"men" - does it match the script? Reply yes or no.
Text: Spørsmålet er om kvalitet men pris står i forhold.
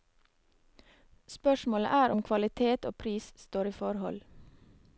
no